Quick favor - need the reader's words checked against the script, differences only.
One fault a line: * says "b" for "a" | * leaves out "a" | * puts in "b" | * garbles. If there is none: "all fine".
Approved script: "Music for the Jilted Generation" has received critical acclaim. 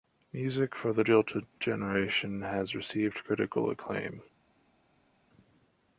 all fine